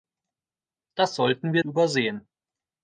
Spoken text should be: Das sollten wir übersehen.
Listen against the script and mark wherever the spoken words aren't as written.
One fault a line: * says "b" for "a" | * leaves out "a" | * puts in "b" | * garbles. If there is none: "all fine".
all fine